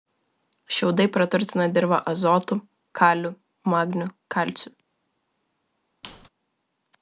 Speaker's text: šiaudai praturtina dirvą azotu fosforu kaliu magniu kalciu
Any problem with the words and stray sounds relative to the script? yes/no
yes